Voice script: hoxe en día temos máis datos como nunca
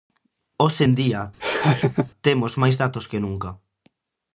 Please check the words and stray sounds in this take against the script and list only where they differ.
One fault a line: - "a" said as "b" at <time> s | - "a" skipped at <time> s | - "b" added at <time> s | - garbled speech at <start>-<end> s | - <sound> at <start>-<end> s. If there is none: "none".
- laugh at 1.4-2.1 s
- "como" said as "que" at 3.1 s